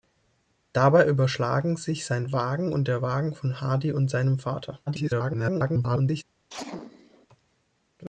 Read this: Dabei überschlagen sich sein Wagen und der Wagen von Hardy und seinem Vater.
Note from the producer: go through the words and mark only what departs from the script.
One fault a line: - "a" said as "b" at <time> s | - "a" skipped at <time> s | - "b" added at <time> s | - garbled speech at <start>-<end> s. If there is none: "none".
- garbled speech at 4.9-6.2 s